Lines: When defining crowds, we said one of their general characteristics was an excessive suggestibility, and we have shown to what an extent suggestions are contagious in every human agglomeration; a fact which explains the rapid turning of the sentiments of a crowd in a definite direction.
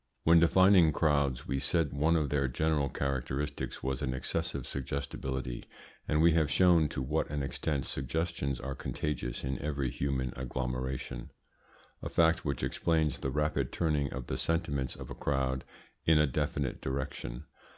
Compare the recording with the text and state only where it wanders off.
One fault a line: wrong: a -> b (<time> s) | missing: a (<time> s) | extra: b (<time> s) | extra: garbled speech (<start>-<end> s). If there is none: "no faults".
no faults